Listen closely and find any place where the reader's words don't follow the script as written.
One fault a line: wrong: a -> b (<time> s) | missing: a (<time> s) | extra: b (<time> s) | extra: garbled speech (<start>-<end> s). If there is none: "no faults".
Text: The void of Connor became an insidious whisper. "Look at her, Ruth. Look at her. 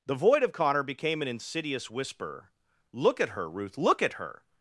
no faults